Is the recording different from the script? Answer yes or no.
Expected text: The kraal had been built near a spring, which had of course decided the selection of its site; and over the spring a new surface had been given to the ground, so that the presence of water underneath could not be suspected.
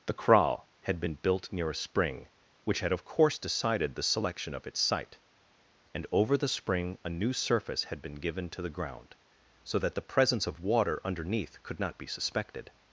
no